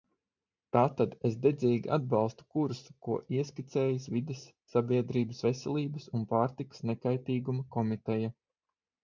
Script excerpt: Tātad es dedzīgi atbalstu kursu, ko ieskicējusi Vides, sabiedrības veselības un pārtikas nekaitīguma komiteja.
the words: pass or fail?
pass